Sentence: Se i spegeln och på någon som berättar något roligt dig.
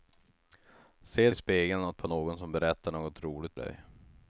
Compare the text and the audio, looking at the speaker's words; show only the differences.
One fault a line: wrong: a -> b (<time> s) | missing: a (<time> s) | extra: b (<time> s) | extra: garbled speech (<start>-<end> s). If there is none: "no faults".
no faults